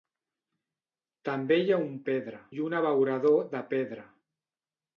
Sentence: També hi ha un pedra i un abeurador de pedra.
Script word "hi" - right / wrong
right